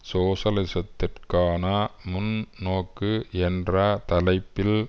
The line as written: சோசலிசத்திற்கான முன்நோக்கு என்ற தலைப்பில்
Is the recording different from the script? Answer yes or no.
no